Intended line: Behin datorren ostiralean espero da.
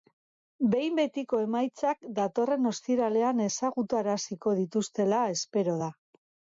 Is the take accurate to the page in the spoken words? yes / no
no